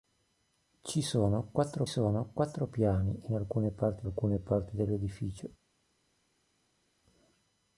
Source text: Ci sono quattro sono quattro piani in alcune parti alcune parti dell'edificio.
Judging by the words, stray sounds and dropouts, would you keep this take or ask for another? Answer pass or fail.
pass